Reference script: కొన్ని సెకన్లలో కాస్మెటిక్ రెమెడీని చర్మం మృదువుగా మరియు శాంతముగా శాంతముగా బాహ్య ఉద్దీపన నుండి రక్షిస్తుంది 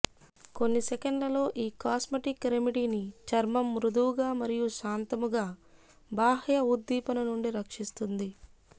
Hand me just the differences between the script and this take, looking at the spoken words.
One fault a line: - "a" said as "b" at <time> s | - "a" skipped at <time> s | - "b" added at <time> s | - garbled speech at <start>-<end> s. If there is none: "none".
- "ఈ" added at 1.6 s
- "శాంతముగా" skipped at 5.5 s